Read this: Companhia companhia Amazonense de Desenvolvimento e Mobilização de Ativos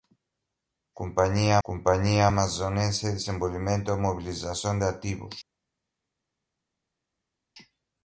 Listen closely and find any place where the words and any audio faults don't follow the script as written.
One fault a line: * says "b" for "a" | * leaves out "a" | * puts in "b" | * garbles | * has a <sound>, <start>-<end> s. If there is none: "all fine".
all fine